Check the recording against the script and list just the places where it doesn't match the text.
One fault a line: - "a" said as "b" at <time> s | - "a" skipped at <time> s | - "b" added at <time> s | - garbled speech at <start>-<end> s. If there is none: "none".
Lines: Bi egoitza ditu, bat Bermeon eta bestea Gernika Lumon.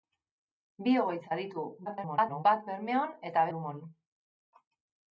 - garbled speech at 1.9-2.4 s
- "bestea Gernika" skipped at 3.4 s